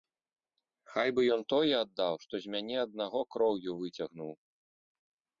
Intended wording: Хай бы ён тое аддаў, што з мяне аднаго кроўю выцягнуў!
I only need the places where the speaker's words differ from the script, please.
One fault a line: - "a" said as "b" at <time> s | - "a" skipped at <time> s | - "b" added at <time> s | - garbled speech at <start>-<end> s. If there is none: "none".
none